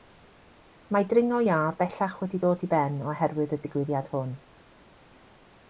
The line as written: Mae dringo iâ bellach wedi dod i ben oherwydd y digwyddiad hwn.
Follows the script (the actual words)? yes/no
yes